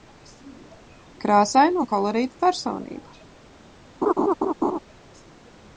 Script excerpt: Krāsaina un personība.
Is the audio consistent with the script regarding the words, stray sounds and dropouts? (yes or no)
no